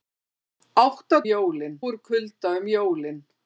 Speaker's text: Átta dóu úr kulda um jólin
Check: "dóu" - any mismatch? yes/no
yes